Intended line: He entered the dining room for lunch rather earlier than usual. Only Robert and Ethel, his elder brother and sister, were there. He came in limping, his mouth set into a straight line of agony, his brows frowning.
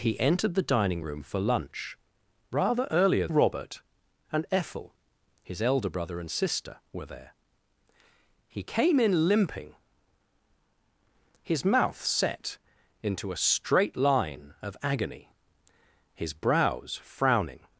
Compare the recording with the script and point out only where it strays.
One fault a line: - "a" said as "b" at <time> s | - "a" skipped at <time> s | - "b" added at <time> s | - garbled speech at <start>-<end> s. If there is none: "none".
- "than usual Only" skipped at 3.3 s